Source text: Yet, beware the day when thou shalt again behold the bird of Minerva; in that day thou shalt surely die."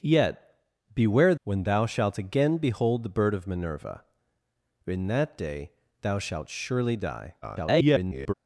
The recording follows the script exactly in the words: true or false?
false